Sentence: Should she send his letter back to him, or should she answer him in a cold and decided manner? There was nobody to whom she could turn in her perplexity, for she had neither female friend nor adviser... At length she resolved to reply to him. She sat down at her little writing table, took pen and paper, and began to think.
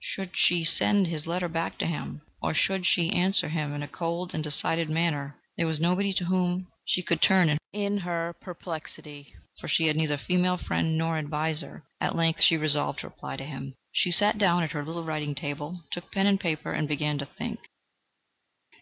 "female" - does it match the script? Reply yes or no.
yes